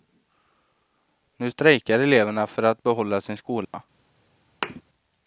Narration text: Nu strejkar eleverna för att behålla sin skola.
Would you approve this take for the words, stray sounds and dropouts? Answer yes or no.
no